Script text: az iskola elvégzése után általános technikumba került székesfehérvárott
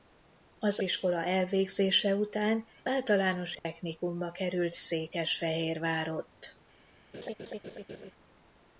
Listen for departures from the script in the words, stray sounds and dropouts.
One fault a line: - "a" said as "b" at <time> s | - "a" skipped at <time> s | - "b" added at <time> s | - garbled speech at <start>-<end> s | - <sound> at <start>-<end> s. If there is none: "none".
- dropout at 3.6-3.6 s
- laugh at 7.1-8.1 s